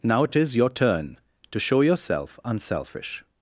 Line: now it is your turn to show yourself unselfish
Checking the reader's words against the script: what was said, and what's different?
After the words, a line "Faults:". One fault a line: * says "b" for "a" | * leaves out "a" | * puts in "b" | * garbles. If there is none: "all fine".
now it it is your turn to show yourself unselfish
Faults:
* puts in "it"